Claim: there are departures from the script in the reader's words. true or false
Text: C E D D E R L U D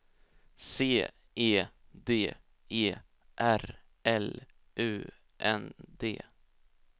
true